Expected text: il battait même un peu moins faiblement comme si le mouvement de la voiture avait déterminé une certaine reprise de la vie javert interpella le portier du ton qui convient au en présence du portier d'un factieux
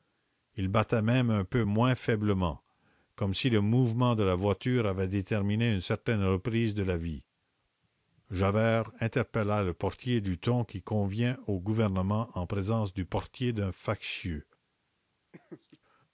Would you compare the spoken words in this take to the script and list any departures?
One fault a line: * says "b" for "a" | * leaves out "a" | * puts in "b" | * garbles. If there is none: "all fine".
* puts in "gouvernement"